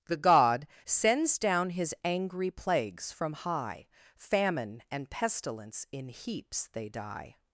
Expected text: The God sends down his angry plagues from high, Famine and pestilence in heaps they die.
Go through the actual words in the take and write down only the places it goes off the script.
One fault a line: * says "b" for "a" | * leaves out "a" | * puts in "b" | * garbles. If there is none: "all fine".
all fine